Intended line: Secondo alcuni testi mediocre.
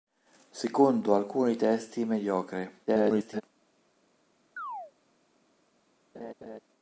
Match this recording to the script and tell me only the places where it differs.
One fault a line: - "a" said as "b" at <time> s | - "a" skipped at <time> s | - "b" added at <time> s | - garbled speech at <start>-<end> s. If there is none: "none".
- garbled speech at 2.9-3.4 s